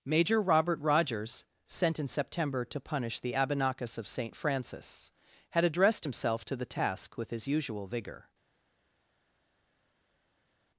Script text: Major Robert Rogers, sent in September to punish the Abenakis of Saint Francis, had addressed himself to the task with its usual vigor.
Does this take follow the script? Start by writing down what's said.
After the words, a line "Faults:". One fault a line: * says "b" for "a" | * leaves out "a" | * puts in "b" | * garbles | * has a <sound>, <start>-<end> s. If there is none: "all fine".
Major Robert Rogers, sent in September to punish the Abenakis of Saint Francis, had addressed himself to the task with his usual vigor.
Faults:
* says "his" for "its"